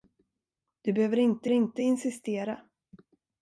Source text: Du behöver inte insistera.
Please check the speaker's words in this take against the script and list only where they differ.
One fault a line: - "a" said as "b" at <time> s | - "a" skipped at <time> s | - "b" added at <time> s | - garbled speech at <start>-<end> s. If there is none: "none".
- "inte" added at 1.5 s